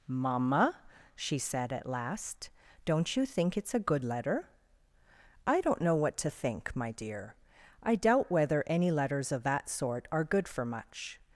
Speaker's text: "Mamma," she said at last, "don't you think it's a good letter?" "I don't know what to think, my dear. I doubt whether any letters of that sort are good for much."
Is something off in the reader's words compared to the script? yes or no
no